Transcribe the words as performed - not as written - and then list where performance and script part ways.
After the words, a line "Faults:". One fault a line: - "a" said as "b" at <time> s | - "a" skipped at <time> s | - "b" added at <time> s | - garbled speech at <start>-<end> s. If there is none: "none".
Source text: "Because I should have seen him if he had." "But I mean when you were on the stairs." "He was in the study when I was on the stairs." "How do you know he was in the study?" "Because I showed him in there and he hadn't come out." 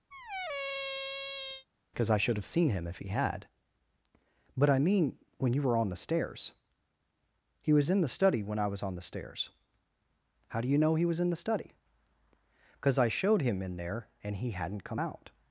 "Because I should have seen him if he had." "But I mean when you were on the stairs." "He was in the study when I was on the stairs." "How do you know he was in the study?" "Because I showed him in there and he hadn't come out."
Faults:
none